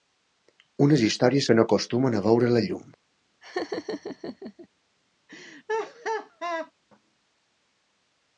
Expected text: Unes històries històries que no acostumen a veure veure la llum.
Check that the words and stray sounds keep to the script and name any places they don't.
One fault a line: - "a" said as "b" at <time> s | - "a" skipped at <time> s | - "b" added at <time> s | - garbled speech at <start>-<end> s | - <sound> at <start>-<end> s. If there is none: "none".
- "històries" skipped at 1.5 s
- "veure" skipped at 2.5 s
- laugh at 3.4-4.7 s
- laugh at 5.3-6.7 s